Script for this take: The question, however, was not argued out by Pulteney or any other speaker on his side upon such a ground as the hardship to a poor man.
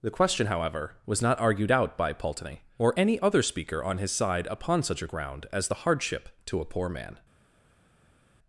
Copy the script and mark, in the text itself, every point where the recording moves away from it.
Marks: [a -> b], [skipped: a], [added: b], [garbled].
The question, however, was not argued out by Pulteney or any other speaker on his side upon such a ground as the hardship to a poor man.